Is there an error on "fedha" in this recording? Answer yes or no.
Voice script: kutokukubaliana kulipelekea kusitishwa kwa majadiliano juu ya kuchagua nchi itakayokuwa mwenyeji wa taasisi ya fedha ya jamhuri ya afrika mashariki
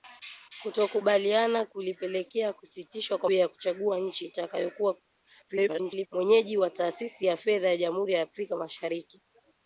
no